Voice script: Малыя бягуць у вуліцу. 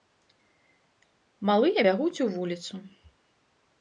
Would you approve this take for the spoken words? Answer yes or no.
yes